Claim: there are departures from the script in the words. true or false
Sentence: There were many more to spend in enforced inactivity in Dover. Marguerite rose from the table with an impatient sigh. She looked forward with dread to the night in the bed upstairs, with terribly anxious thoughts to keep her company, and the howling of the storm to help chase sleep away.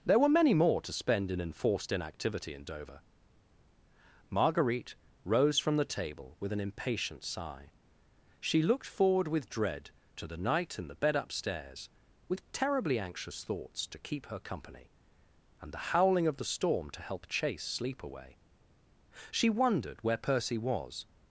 true